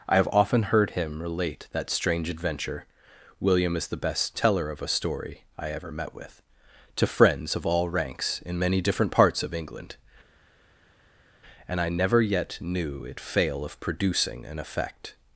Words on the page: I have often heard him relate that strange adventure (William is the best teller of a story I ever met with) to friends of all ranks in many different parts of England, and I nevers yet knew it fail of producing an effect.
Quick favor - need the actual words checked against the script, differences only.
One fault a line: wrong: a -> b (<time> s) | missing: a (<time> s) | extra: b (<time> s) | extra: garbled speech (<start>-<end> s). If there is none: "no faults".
wrong: nevers -> never (11.9 s)